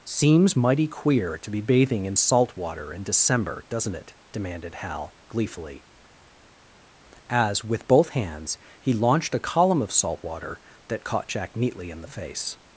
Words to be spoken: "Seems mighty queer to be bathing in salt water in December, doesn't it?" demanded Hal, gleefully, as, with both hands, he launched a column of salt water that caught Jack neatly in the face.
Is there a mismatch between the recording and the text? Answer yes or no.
no